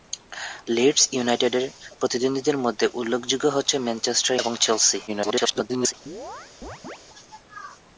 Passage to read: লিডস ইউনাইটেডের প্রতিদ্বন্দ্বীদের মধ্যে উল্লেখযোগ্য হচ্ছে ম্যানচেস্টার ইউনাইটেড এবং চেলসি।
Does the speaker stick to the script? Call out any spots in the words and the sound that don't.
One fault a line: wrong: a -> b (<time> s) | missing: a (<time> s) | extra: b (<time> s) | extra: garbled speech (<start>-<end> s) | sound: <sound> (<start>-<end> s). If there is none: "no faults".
missing: ইউনাইটেড (4.3 s)
extra: garbled speech (5.1-5.9 s)
sound: chirp (6.1-7.0 s)